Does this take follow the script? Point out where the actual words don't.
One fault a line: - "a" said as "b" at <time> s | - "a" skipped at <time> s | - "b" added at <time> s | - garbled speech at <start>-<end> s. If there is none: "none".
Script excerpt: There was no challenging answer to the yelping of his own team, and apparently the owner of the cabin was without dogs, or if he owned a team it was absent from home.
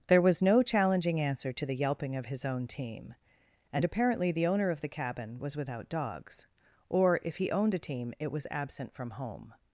none